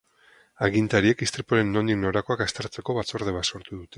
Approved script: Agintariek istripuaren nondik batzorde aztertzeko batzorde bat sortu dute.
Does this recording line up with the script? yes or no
no